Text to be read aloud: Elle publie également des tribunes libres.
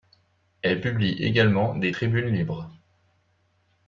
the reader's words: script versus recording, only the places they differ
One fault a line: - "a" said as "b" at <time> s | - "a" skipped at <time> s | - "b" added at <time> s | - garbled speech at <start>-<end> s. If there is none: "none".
none